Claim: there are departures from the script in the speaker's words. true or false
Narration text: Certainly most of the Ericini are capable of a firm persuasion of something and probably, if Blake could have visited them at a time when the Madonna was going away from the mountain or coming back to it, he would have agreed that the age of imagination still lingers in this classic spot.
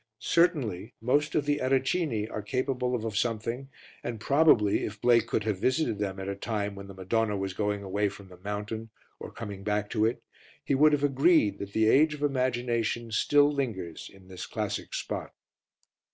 true